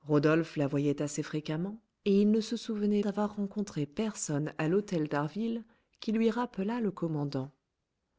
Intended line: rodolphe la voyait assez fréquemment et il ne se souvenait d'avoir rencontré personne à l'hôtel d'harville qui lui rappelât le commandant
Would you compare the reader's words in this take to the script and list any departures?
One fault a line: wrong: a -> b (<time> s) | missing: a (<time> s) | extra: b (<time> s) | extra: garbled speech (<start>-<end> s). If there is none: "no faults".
no faults